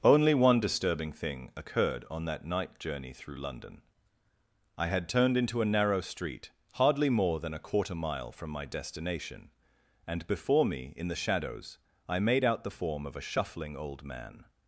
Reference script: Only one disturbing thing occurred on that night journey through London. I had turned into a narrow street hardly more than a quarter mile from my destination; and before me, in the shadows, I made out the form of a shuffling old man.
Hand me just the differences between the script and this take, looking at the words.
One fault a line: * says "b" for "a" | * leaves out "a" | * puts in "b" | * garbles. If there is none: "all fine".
all fine